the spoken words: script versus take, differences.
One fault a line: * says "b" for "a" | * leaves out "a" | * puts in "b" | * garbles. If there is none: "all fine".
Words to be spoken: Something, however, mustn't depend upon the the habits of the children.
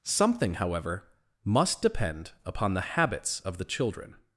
* says "must" for "mustn't"
* leaves out "the"